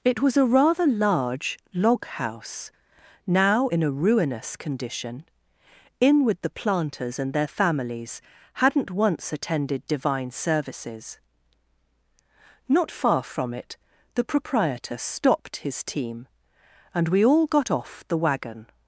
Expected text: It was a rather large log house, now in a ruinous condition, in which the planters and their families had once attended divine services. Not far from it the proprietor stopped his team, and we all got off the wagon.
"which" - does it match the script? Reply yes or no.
no